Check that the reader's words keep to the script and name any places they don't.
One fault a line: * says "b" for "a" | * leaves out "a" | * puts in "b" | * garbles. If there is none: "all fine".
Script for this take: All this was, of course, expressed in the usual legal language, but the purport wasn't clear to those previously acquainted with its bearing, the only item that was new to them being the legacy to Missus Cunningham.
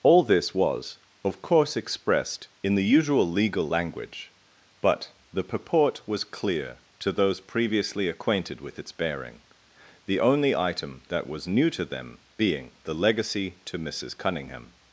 * says "was" for "wasn't"